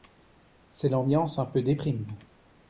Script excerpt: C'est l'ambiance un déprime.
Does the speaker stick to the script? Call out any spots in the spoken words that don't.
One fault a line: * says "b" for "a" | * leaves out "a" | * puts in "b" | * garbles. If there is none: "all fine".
* puts in "peu"